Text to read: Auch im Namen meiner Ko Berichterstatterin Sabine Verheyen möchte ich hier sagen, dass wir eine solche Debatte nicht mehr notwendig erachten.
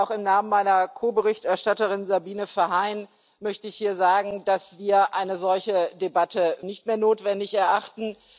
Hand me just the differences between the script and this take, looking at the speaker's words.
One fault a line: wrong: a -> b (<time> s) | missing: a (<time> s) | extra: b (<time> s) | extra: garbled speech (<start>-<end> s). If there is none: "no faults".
no faults